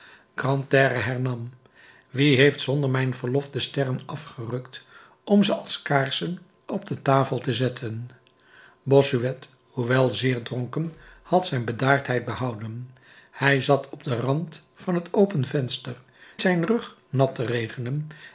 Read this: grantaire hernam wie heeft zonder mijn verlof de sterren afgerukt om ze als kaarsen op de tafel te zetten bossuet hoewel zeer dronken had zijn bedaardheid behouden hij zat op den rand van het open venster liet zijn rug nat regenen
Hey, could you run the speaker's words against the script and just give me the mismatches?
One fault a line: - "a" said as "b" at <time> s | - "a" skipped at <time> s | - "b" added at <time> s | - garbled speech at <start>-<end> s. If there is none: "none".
- "liet" skipped at 15.9 s